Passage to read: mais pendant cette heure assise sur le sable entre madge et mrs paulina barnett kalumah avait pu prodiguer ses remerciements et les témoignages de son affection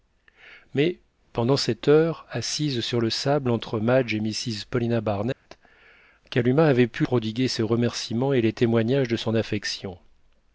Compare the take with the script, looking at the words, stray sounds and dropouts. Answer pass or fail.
fail